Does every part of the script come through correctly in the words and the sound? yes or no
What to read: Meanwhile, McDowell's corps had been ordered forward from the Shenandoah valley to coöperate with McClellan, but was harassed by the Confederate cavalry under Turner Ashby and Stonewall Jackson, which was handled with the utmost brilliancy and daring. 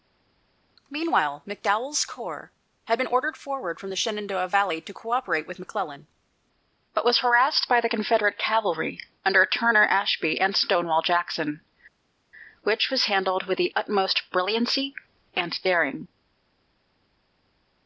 yes